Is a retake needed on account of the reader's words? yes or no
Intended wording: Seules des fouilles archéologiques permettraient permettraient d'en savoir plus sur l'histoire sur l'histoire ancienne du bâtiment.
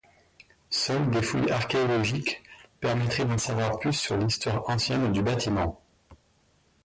yes